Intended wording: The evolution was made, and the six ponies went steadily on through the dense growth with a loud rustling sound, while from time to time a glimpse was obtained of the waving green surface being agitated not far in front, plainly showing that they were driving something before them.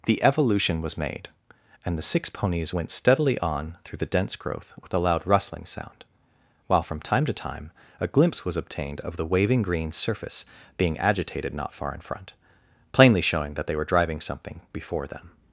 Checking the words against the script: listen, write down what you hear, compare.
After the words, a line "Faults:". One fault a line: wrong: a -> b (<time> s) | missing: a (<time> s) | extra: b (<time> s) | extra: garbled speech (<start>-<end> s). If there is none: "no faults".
The evolution was made, and the six ponies went steadily on through the dense growth with a loud rustling sound, while from time to time a glimpse was obtained of the waving green surface being agitated not far in front, plainly showing that they were driving something before them.
Faults:
no faults